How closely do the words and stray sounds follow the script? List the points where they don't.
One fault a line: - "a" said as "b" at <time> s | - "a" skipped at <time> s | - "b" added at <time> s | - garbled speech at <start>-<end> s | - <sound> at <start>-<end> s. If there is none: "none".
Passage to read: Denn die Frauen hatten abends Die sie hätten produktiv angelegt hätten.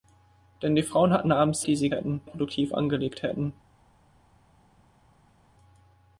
none